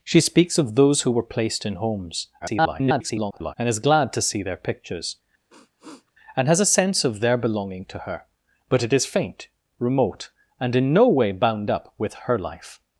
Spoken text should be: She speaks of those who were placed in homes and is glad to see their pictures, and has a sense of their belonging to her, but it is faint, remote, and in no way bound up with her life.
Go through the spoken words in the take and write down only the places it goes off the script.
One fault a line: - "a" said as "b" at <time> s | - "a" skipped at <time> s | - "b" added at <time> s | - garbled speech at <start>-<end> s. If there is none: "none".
- garbled speech at 2.4-3.5 s